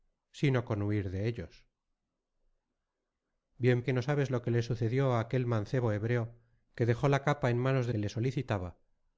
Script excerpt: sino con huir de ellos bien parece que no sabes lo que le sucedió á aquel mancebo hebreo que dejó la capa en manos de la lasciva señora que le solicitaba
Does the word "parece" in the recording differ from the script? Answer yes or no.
yes